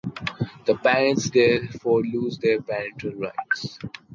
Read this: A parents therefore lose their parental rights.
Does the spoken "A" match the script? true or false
false